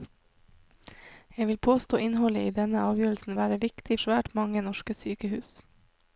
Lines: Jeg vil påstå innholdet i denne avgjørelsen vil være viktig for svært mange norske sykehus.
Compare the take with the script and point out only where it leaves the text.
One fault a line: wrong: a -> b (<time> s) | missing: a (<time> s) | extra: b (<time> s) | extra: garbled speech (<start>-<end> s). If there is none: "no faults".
missing: vil (3.4 s)
missing: for (4.0 s)